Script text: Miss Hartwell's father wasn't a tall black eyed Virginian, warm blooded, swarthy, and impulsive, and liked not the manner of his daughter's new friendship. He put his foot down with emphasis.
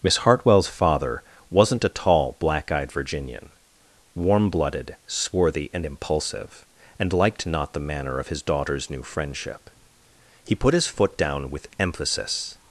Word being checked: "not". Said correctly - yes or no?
yes